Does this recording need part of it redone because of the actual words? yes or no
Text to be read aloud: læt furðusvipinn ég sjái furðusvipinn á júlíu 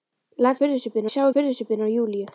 no